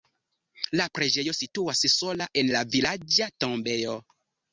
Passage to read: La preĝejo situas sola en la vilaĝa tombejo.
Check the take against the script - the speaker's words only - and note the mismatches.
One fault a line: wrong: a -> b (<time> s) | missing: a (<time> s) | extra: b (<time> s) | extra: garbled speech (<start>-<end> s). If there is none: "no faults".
no faults